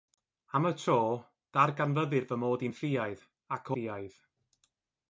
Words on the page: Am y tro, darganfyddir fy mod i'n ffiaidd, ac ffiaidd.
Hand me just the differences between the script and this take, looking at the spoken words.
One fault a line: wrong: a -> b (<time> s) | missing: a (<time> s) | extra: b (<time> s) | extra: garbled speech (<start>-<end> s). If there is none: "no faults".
no faults